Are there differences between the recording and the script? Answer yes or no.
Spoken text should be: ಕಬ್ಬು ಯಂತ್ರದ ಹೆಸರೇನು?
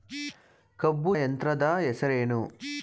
no